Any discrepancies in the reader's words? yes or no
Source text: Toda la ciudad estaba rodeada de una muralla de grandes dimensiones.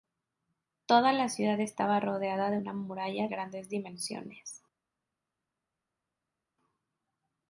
yes